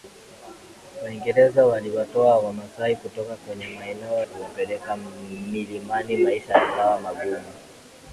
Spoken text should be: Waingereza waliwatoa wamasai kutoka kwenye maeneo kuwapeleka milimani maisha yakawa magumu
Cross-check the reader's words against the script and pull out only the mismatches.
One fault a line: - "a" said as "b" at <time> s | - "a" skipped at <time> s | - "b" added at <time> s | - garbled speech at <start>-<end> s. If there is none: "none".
none